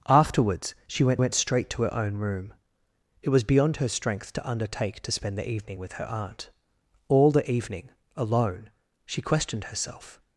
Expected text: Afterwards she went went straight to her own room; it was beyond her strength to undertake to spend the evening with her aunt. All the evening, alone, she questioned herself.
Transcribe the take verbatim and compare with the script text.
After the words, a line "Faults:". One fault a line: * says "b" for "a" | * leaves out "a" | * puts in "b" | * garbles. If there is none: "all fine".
Afterwards she went went straight to her own room; it was beyond her strength to undertake to spend the evening with her aunt. All the evening, alone, she questioned herself.
Faults:
all fine